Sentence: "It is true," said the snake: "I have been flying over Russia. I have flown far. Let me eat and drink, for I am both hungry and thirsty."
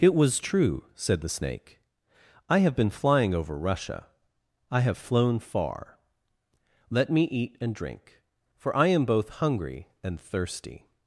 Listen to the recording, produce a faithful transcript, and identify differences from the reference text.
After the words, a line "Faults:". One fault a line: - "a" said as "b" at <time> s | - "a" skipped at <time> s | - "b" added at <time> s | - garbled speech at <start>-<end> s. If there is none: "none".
"It was true," said the snake: "I have been flying over Russia. I have flown far. Let me eat and drink, for I am both hungry and thirsty."
Faults:
- "is" said as "was" at 0.1 s